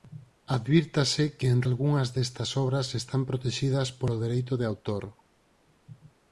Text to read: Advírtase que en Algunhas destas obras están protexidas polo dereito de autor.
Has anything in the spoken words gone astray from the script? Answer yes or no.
no